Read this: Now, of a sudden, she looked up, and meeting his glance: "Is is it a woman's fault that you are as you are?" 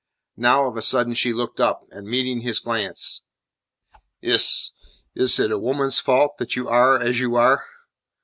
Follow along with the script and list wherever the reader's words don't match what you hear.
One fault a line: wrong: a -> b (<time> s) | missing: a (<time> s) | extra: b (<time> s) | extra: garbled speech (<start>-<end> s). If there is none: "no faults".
no faults